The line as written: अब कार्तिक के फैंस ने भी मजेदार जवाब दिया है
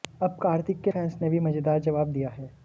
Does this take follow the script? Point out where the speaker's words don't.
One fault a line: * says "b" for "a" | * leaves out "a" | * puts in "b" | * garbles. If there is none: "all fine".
all fine